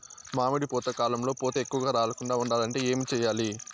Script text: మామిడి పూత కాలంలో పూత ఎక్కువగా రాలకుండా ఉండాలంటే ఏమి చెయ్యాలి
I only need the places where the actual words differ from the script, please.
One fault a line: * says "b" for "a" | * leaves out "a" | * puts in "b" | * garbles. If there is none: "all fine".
all fine